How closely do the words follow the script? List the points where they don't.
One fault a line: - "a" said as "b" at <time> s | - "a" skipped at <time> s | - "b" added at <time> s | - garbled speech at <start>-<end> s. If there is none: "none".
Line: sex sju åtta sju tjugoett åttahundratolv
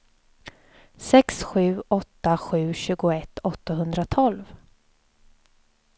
none